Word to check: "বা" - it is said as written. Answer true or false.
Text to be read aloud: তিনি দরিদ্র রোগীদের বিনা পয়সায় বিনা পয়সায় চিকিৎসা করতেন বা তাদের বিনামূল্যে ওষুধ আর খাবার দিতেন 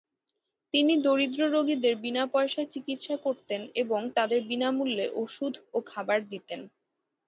false